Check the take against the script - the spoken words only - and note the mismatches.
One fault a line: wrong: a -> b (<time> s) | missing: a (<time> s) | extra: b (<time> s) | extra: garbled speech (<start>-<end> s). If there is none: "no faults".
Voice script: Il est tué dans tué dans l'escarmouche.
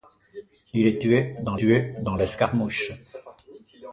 no faults